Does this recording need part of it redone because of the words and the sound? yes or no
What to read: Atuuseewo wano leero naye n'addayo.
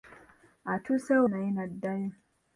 yes